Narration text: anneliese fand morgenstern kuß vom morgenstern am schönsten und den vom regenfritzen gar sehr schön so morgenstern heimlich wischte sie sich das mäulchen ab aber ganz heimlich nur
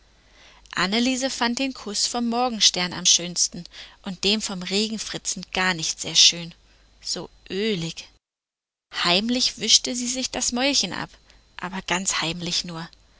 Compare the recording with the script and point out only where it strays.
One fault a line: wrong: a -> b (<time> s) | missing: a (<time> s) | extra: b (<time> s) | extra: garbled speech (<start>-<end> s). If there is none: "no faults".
wrong: morgenstern -> den (1.6 s)
extra: nicht (5.7 s)
wrong: morgenstern -> ölig (7.5 s)